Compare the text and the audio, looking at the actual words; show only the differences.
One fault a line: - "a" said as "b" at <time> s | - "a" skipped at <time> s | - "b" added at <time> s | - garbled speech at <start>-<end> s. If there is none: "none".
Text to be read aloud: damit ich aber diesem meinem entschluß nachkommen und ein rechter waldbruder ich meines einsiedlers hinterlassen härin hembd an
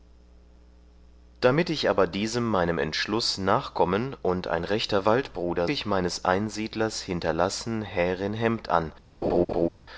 none